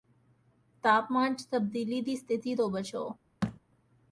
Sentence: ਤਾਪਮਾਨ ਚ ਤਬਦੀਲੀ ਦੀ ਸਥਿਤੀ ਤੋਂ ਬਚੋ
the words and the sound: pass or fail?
fail